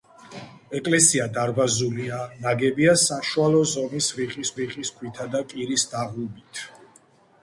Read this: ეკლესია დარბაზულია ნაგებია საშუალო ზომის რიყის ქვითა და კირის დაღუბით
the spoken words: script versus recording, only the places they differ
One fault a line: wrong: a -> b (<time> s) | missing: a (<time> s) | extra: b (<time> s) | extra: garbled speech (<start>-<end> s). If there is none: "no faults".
extra: რიყის (4.6 s)